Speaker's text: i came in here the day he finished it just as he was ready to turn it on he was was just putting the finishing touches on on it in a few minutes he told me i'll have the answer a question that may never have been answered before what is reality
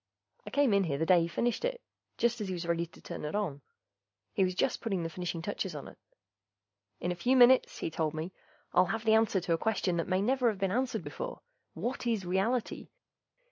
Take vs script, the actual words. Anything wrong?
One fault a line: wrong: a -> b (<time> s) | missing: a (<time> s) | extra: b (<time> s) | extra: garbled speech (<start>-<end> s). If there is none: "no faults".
missing: was (4.5 s)
missing: on (5.9 s)
extra: to (9.4 s)